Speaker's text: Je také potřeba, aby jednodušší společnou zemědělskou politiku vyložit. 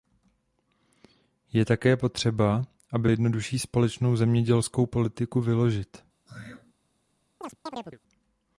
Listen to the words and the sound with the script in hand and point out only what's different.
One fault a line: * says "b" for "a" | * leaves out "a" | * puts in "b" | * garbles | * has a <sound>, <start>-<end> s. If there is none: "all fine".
* has a throat clearing, 6.3-6.7 s
* has a chirp, 7.4-8.0 s